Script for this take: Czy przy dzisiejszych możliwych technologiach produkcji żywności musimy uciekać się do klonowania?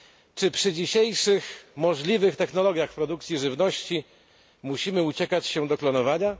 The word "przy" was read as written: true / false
true